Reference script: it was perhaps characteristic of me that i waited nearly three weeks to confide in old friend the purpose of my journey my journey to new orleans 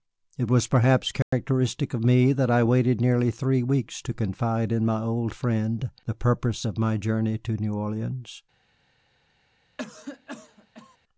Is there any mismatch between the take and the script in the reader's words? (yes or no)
yes